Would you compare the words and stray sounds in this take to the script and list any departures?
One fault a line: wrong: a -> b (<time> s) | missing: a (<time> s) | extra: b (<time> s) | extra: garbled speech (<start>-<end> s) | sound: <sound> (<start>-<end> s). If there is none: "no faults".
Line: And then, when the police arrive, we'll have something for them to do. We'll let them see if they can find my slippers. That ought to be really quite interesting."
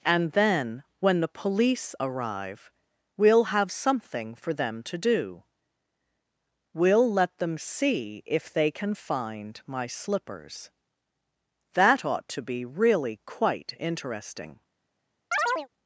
sound: chirp (15.3-15.7 s)